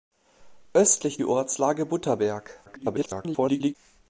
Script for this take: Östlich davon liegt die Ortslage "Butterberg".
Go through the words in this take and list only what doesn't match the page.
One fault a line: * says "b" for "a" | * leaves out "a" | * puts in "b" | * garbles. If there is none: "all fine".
* leaves out "davon liegt"
* garbles